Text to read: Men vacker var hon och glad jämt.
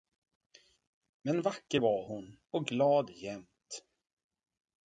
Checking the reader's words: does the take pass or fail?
pass